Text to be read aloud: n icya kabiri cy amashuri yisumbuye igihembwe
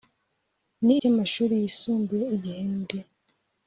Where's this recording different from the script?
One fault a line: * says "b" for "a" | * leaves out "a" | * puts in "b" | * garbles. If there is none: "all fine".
* leaves out "icya kabiri"